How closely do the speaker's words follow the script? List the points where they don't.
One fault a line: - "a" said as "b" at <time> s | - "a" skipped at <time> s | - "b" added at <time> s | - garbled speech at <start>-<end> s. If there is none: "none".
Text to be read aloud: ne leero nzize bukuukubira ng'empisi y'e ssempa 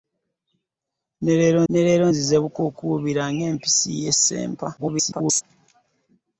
- "ne leero" added at 1.7 s
- garbled speech at 4.8-5.4 s